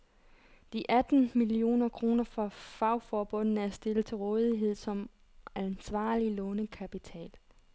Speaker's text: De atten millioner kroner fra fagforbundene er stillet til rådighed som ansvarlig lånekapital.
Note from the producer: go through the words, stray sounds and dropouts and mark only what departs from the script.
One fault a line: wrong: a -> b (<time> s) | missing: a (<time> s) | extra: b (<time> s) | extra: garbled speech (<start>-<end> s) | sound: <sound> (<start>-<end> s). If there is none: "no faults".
no faults